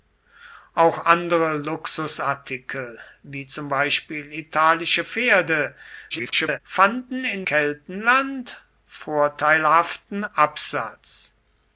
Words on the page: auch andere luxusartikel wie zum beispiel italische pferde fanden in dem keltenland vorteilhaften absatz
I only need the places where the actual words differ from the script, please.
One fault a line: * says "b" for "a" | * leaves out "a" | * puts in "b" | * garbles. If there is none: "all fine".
* garbles
* leaves out "dem"